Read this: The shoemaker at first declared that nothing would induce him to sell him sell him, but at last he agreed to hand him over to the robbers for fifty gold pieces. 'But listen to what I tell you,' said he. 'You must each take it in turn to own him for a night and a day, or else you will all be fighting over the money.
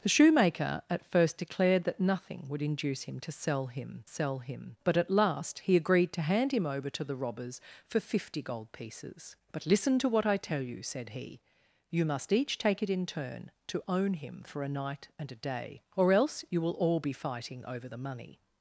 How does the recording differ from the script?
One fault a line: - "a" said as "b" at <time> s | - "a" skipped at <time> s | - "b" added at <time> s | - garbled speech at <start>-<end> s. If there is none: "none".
none